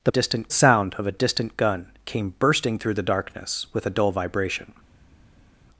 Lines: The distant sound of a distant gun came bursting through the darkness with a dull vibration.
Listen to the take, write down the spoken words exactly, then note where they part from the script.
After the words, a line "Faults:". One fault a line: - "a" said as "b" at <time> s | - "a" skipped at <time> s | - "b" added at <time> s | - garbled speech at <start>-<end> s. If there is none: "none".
The distant sound of a distant gun came bursting through the darkness with a dull vibration.
Faults:
none